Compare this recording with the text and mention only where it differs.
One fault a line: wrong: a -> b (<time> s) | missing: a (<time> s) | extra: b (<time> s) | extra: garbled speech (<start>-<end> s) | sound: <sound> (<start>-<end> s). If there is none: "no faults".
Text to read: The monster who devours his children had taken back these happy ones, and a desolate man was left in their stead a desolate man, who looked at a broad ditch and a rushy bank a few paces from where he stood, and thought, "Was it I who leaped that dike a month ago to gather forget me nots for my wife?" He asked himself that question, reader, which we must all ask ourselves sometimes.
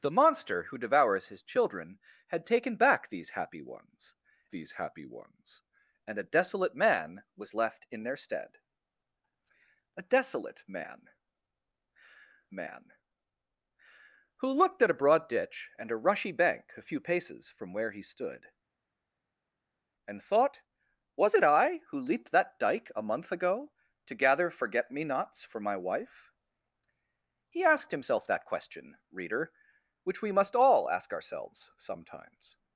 extra: these happy ones (4.5 s)
extra: man (12.5 s)